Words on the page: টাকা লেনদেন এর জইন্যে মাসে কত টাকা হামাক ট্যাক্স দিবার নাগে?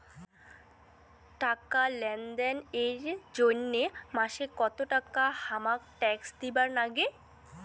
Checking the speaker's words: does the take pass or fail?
pass